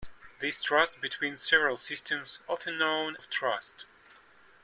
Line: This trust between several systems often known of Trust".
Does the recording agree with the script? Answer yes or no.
yes